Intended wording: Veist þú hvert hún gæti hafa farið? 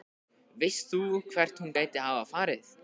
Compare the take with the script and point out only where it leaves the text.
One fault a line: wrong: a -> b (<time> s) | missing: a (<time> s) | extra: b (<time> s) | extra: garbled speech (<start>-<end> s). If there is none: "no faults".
no faults